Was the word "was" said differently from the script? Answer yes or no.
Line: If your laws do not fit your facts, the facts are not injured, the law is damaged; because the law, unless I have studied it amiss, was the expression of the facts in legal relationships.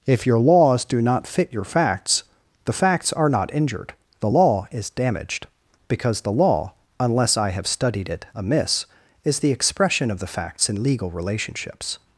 yes